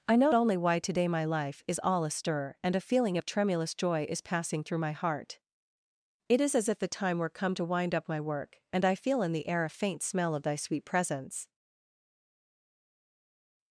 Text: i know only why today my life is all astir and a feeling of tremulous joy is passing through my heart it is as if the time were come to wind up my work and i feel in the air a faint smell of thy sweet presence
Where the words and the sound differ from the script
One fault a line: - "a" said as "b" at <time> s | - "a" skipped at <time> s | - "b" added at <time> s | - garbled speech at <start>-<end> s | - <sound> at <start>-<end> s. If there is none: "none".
none